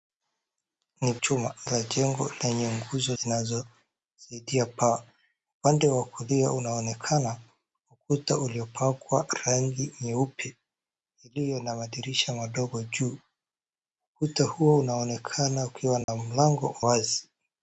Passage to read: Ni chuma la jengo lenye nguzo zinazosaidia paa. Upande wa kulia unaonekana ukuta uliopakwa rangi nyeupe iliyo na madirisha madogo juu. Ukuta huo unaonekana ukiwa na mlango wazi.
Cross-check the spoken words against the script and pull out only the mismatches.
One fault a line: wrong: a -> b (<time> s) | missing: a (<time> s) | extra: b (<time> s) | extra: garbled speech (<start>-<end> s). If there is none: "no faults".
no faults